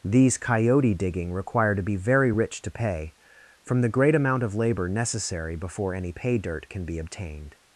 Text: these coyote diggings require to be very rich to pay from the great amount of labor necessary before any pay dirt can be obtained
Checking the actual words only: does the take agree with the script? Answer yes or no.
no